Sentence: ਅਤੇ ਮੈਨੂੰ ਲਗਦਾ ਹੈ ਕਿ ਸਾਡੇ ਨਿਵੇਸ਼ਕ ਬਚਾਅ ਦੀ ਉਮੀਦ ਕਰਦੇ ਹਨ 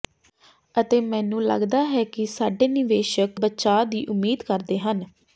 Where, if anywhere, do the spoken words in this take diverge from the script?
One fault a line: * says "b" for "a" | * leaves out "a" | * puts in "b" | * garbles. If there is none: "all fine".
all fine